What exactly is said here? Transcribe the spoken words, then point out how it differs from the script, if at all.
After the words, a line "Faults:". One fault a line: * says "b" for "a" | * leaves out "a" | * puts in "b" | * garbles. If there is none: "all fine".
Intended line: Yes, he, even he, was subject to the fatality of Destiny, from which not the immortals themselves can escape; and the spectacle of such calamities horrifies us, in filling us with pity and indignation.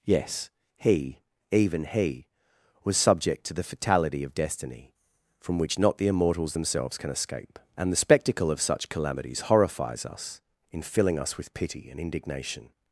Yes, he, even he, was subject to the fatality of Destiny, from which not the immortals themselves can escape; and the spectacle of such calamities horrifies us, in filling us with pity and indignation.
Faults:
all fine